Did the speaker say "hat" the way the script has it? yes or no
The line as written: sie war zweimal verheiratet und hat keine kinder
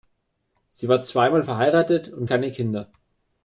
no